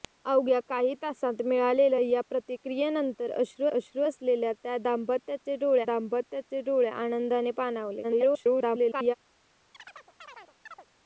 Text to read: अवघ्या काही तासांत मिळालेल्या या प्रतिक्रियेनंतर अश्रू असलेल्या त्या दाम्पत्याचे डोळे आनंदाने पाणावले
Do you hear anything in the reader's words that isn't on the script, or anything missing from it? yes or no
yes